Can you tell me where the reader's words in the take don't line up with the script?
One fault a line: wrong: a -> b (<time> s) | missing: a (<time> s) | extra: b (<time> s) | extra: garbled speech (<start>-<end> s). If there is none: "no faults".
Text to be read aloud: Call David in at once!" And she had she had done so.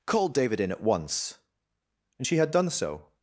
missing: she had (2.5 s)